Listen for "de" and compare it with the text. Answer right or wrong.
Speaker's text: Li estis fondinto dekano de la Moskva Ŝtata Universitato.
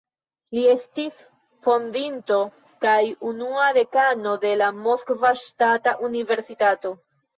right